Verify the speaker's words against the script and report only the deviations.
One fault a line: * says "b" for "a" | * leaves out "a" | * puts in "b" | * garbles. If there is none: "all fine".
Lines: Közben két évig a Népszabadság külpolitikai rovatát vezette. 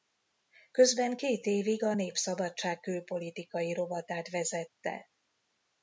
all fine